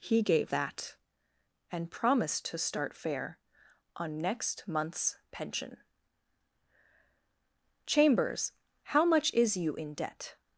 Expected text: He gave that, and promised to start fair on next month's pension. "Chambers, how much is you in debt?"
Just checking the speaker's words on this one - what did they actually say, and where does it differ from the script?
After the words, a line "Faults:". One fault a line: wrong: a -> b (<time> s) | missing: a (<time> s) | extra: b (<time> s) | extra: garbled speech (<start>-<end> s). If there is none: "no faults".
He gave that, and promised to start fair on next month's pension. "Chambers, how much is you in debt?"
Faults:
no faults